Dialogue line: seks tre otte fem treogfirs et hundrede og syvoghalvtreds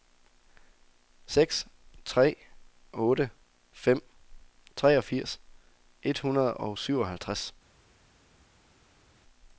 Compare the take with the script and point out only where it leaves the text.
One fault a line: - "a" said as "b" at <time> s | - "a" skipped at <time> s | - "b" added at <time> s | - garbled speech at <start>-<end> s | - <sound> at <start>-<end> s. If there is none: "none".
none